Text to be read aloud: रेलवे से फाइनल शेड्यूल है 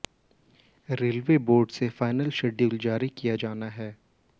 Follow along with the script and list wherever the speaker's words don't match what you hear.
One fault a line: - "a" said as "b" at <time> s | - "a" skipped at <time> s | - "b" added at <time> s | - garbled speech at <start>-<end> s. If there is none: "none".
- "बोर्ड" added at 1.4 s
- "जारी किया जाना" added at 2.8 s